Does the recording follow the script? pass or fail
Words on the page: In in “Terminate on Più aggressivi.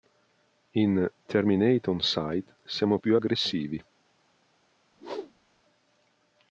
fail